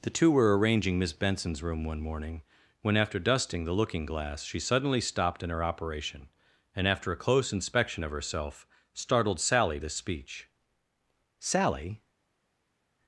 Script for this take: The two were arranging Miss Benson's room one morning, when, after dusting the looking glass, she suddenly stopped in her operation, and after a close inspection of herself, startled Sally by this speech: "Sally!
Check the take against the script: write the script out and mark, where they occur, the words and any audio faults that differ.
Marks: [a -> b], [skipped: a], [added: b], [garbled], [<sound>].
The two were arranging Miss Benson's room one morning, when, after dusting the looking glass, she suddenly stopped in her operation, and after a close inspection of herself, startled Sally [skipped: by] this speech: "Sally!